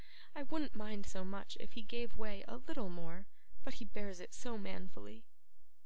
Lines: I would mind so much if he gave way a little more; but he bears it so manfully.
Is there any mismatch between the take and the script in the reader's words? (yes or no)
yes